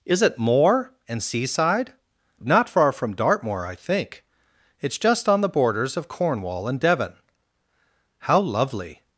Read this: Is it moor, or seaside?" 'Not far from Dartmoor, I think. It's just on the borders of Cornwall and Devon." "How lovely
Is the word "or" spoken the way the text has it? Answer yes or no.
no